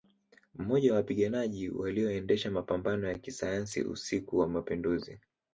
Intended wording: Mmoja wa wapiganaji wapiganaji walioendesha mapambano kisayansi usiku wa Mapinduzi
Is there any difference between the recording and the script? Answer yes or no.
yes